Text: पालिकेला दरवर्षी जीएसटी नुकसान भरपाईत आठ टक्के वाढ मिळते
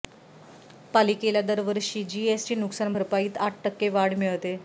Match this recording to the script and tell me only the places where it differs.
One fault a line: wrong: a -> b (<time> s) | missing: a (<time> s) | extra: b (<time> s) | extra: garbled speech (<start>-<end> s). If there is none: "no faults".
no faults